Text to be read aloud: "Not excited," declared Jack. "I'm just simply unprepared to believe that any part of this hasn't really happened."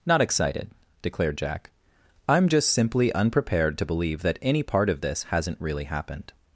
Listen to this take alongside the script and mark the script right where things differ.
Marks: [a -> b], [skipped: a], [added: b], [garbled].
"Not excited," declared Jack. "I'm just simply unprepared to believe that any part of this hasn't really happened."